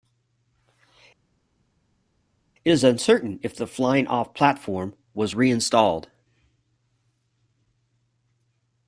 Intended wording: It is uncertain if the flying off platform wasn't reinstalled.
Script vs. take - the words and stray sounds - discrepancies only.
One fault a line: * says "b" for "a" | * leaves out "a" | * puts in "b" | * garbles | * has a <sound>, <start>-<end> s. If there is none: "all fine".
* says "was" for "wasn't"